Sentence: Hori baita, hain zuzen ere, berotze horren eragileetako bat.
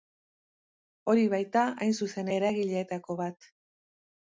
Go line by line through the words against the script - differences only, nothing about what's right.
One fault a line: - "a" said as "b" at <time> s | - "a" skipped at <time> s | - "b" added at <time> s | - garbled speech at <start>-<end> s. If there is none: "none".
- "ere berotze horren" skipped at 2.3 s